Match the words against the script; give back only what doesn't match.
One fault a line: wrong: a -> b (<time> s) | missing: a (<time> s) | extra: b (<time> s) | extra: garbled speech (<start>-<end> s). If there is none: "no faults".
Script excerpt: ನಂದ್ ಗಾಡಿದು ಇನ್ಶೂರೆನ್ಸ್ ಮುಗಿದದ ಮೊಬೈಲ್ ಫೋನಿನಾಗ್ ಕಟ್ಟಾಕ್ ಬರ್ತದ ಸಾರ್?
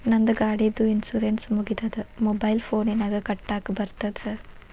no faults